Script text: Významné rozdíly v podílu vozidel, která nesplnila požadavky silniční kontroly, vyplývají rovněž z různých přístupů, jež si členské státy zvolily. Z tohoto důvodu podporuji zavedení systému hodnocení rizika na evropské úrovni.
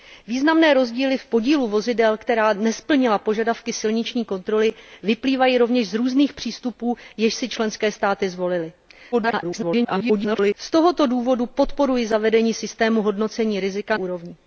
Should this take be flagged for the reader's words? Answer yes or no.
yes